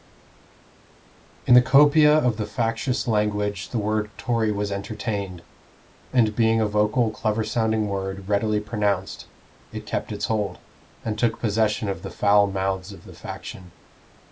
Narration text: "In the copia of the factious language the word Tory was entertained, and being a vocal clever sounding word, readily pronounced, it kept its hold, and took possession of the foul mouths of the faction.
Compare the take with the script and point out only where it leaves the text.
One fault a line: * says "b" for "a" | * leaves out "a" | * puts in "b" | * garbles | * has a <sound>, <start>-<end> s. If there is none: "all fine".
all fine